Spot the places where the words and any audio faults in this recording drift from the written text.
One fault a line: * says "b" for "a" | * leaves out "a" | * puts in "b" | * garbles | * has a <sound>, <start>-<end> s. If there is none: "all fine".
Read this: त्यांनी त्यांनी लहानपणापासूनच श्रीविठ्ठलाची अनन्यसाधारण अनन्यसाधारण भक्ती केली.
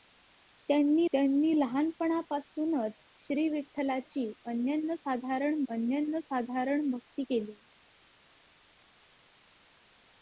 all fine